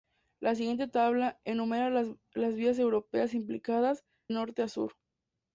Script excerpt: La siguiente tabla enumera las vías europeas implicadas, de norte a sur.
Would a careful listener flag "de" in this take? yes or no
yes